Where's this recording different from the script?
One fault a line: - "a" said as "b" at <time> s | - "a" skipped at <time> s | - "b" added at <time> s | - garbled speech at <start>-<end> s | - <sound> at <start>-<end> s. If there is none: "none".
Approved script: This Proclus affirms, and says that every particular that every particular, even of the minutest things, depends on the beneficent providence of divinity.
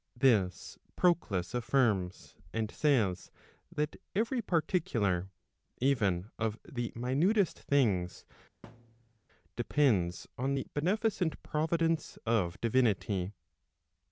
- "that every particular" skipped at 5.3 s
- thud at 8.6-9.2 s